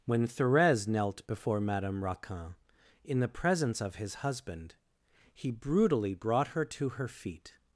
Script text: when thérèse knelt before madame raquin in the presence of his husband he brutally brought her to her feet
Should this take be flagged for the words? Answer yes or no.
no